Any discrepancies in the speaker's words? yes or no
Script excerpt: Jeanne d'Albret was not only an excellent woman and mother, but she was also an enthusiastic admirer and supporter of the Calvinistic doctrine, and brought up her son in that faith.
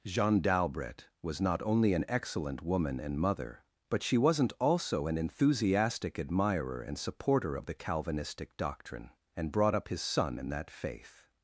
yes